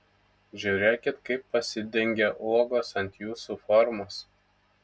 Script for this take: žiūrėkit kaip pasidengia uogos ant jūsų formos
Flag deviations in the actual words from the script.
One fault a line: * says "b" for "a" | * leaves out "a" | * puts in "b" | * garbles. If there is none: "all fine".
all fine